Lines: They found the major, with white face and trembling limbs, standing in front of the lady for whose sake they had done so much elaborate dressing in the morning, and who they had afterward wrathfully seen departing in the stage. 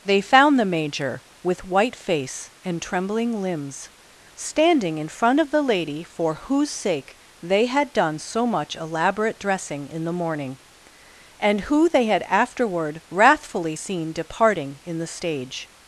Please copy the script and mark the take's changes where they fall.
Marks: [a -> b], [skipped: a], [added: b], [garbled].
They found the major, with white face and trembling limbs, standing in front of the lady for whose sake they had done so much elaborate dressing in the morning, and who they had afterward wrathfully seen departing in the stage.